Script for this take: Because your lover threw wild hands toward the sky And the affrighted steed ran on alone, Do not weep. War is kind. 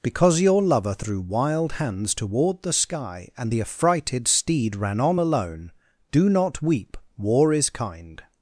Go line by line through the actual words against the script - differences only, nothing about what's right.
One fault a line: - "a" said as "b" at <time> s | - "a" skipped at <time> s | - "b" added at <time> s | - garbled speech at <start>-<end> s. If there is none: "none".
none